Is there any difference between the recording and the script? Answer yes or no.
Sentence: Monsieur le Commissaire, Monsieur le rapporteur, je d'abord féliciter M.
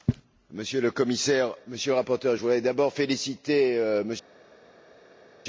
yes